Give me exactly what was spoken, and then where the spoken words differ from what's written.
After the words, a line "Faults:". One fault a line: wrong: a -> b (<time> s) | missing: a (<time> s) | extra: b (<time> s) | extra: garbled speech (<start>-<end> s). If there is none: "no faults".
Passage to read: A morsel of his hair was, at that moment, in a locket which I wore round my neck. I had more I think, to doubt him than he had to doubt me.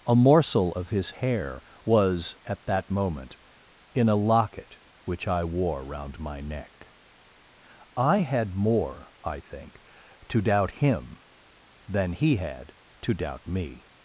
A morsel of his hair was, at that moment, in a locket which I wore round my neck. I had more I think, to doubt him than he had to doubt me.
Faults:
no faults